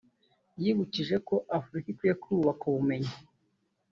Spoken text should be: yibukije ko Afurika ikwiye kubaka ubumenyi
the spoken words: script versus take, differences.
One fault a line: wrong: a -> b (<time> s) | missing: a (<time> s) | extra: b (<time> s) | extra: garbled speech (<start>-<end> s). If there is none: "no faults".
no faults